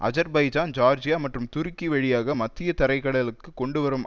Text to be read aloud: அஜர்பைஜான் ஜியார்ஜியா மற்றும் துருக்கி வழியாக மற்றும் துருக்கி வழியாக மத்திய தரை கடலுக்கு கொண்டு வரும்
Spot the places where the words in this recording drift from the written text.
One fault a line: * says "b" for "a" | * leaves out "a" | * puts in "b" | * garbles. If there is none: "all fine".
* leaves out "மற்றும் துருக்கி வழியாக"